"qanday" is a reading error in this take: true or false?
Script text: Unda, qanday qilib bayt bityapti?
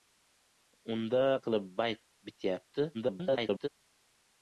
true